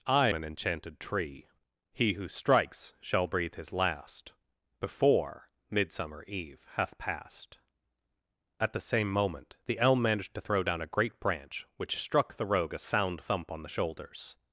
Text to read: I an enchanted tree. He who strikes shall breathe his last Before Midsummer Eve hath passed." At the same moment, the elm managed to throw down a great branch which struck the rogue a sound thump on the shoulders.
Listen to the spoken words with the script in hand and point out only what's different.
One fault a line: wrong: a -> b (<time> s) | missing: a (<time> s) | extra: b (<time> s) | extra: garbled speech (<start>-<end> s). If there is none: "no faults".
no faults